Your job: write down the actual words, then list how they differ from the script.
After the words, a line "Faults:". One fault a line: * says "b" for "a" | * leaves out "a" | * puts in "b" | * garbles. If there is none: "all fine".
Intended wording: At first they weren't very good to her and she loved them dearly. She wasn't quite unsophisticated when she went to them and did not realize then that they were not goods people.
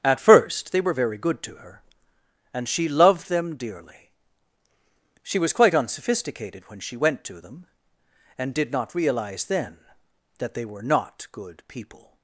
At first they were very good to her and she loved them dearly. She was quite unsophisticated when she went to them and did not realize then that they were not good people.
Faults:
* says "were" for "weren't"
* says "was" for "wasn't"
* says "good" for "goods"